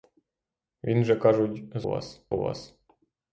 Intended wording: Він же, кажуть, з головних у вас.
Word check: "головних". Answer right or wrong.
wrong